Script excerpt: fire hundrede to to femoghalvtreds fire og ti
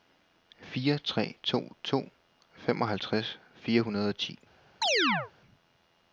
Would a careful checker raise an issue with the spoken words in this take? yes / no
yes